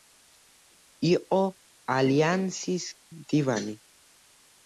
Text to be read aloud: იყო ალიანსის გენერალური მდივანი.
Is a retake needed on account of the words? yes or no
yes